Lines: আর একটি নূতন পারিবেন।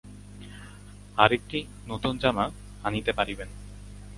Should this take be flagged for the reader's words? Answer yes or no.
yes